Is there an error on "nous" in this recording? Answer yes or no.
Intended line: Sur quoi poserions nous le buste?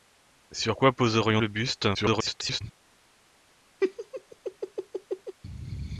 yes